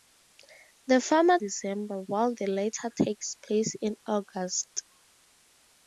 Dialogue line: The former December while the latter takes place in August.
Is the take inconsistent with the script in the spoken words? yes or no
no